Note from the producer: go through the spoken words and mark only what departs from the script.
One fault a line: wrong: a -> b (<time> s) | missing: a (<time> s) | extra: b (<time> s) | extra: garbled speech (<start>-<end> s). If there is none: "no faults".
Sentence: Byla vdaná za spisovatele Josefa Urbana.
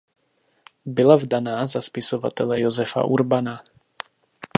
no faults